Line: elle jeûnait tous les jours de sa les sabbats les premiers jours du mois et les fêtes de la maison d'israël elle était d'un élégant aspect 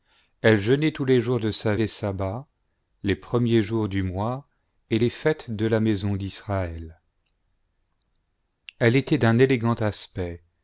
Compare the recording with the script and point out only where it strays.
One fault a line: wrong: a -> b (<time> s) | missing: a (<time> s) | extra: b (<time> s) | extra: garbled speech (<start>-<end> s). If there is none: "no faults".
no faults